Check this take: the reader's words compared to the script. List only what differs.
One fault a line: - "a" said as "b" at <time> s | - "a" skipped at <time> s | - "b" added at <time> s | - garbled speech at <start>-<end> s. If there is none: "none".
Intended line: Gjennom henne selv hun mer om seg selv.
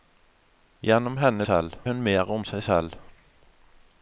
none